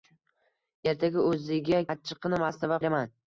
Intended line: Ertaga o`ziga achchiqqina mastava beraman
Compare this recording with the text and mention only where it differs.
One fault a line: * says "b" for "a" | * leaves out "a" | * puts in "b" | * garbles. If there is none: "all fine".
all fine